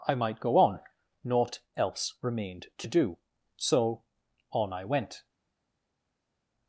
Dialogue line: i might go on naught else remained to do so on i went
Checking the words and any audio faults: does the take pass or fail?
pass